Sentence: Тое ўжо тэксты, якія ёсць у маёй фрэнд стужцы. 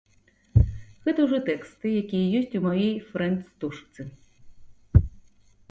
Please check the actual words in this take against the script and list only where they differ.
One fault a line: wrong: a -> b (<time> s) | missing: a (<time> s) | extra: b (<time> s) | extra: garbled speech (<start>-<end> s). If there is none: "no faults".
wrong: Тое -> Гэта (1.1 s)